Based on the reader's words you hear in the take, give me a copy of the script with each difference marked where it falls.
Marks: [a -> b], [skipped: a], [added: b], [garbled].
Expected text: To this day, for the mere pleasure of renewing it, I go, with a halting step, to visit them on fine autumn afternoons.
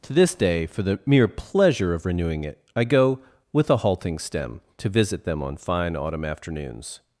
To this day, for the mere pleasure of renewing it, I go, with a halting [step, -> stem] to visit them on fine autumn afternoons.